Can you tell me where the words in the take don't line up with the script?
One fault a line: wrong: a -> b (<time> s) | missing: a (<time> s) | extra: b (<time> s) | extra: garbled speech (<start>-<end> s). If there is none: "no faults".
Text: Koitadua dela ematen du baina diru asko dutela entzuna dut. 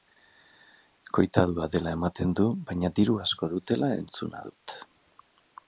no faults